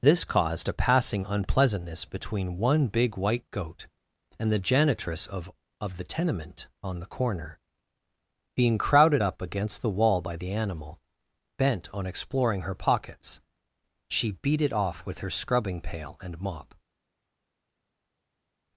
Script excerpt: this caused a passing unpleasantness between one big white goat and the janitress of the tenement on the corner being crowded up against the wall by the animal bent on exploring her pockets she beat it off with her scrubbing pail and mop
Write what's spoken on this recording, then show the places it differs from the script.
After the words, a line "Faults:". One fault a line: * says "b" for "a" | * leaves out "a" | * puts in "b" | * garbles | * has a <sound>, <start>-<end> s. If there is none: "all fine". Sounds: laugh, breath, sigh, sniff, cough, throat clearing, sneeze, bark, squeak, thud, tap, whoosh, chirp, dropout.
this caused a passing unpleasantness between one big white goat and the janitress of of the tenement on the corner being crowded up against the wall by the animal bent on exploring her pockets she beat it off with her scrubbing pail and mop
Faults:
* puts in "of"